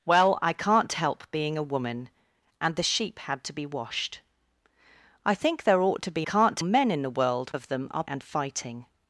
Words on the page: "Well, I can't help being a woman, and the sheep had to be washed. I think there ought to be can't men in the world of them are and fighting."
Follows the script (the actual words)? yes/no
yes